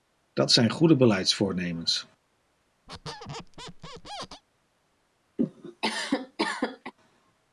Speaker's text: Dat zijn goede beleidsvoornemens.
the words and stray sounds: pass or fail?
fail